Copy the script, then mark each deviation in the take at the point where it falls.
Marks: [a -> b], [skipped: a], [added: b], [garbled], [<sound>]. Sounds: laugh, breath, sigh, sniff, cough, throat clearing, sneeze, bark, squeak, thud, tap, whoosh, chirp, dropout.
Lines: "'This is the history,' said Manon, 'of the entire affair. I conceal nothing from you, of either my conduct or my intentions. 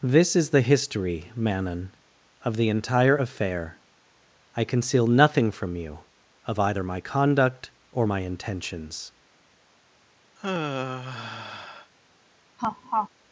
"'This is the history,' [skipped: said] Manon, 'of the entire affair. I conceal nothing from you, of either my conduct or my intentions. [sigh] [laugh]